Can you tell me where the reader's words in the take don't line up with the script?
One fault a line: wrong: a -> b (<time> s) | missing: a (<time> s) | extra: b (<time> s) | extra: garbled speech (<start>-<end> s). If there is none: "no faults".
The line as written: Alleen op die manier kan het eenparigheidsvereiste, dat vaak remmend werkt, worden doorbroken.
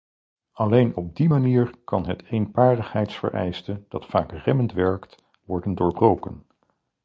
no faults